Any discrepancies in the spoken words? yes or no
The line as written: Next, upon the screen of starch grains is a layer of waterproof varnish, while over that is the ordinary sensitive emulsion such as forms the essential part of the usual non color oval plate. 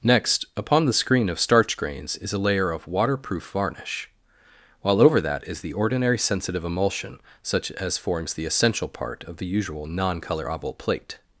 no